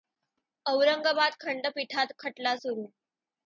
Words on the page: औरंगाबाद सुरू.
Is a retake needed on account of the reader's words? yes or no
yes